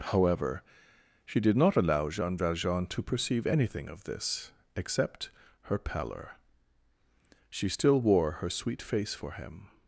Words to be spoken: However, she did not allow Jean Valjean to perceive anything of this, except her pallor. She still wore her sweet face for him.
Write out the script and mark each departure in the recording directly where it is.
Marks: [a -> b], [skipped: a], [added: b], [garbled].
However, she did not allow Jean Valjean to perceive anything of this, except her pallor. She still wore her sweet face for him.